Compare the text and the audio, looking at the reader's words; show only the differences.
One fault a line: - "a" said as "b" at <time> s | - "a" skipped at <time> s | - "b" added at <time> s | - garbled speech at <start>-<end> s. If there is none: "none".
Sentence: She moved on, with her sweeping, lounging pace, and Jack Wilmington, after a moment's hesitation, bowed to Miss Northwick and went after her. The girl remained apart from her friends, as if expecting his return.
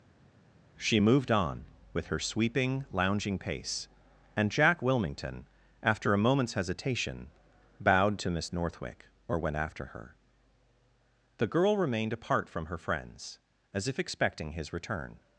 - "and" said as "or" at 9.3 s